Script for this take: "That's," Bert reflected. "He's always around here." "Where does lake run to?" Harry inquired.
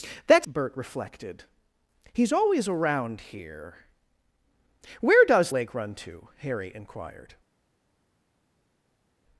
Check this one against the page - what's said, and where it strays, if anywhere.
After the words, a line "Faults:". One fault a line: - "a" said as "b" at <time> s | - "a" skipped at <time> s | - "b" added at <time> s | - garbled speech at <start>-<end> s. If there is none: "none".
"That's," Bert reflected. "He's always around here." "Where does lake run to?" Harry inquired.
Faults:
none